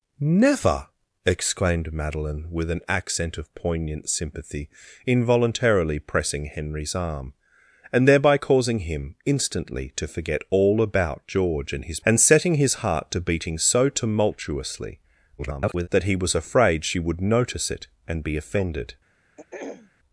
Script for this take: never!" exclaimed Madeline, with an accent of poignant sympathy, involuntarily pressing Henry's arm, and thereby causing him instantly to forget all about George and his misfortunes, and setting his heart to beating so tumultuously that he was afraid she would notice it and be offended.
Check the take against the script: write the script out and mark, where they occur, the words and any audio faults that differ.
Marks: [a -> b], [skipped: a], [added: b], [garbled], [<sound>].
never!" exclaimed Madeline, with an accent of poignant sympathy, involuntarily pressing Henry's arm, and thereby causing him instantly to forget all about George and his [skipped: misfortunes,] and setting his heart to beating so tumultuously [garbled] that he was afraid she would notice it and be offended. [throat clearing]